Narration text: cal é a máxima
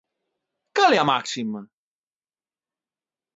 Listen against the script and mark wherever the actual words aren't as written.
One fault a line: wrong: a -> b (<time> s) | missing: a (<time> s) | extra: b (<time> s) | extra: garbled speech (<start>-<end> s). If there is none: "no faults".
no faults